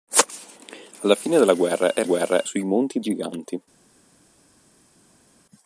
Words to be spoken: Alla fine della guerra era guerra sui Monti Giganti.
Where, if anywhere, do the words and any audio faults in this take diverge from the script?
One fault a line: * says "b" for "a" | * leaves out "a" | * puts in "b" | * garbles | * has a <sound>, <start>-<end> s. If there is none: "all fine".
all fine